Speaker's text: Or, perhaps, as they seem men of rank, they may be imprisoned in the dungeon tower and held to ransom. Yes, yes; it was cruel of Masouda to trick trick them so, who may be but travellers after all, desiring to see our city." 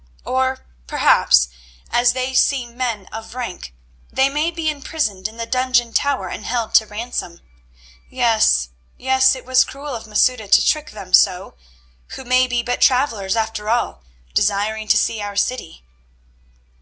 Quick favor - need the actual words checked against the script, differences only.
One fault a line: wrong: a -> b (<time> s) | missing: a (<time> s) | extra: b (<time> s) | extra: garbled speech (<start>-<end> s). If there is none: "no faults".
missing: trick (10.9 s)